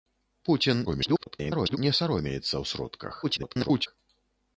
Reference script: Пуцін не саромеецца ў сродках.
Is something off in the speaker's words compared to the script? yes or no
yes